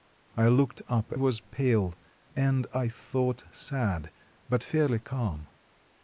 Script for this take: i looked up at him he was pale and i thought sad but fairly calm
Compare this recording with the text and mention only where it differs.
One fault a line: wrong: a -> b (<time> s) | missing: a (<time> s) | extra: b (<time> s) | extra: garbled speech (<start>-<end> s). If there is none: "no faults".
missing: at him he (1.1 s)